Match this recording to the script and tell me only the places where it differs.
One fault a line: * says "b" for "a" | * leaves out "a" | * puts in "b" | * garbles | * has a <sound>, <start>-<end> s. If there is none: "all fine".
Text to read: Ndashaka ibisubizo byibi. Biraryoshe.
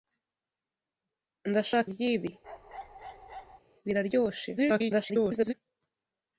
* leaves out "ibisubizo"
* has a bark, 2.4-3.6 s
* garbles